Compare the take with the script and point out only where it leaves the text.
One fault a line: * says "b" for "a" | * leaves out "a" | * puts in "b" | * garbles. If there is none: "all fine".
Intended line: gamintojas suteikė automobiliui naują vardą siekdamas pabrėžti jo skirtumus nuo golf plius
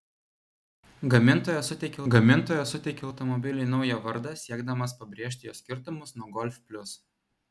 * puts in "gamintojas suteikė"